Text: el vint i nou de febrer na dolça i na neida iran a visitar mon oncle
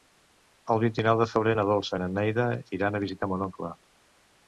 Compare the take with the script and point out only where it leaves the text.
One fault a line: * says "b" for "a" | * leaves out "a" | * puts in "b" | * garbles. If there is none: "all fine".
all fine